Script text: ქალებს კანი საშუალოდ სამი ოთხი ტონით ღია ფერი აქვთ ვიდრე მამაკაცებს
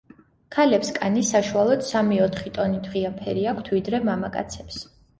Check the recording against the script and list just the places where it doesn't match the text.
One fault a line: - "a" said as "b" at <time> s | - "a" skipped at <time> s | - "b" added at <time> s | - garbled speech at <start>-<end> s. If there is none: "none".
none